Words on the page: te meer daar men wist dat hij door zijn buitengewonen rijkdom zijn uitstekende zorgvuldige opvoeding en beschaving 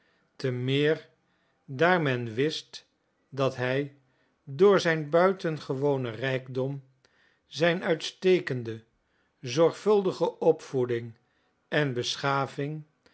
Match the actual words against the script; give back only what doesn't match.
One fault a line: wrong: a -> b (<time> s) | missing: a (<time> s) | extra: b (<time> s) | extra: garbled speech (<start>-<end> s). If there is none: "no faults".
no faults